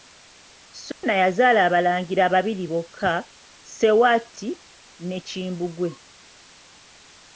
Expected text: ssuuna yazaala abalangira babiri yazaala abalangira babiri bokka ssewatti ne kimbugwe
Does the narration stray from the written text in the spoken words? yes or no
yes